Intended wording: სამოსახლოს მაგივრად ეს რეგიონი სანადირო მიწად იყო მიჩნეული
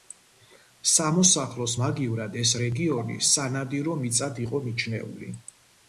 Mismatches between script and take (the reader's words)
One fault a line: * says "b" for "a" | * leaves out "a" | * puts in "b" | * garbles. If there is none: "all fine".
all fine